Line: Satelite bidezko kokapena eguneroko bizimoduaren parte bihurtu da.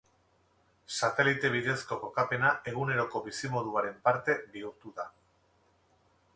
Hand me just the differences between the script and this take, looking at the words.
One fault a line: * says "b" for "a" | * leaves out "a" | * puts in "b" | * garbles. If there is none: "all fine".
all fine